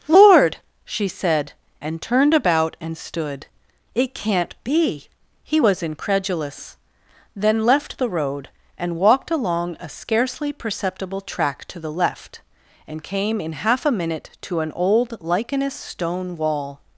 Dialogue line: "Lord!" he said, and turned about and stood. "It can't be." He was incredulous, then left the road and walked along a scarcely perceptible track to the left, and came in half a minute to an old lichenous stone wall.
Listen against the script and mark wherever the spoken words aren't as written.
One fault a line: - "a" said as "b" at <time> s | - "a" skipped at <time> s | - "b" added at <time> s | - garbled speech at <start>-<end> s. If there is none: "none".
- "he" said as "she" at 0.8 s